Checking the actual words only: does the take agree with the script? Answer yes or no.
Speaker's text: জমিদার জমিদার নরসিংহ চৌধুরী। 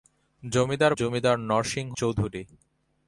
yes